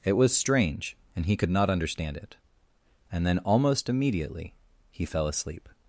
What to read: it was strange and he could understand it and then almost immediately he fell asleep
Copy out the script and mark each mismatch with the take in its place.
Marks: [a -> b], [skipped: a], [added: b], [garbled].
it was strange and he could [added: not] understand it and then almost immediately he fell asleep